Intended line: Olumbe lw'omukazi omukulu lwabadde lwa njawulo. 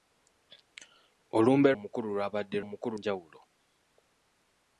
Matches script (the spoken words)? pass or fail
fail